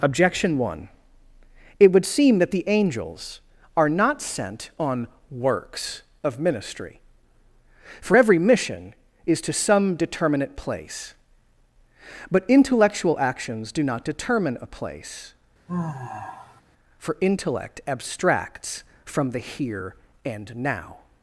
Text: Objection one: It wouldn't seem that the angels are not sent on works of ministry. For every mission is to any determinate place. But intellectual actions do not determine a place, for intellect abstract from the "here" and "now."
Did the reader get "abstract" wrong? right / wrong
wrong